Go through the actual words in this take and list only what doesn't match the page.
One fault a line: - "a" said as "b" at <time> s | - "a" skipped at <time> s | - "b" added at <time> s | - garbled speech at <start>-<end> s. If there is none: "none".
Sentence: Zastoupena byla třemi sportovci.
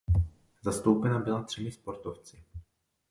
none